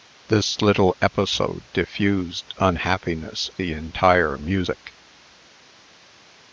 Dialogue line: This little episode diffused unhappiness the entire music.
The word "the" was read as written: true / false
true